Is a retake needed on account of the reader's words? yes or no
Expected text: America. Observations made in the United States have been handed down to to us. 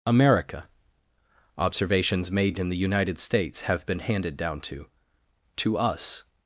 no